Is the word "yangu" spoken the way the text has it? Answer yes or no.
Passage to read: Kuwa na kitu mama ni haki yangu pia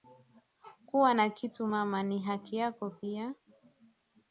no